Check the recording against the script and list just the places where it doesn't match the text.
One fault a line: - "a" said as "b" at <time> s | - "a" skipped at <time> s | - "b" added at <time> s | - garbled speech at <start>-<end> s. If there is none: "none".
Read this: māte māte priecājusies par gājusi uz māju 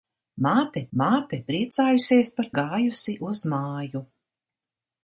none